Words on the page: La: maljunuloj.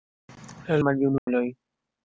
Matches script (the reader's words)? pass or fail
pass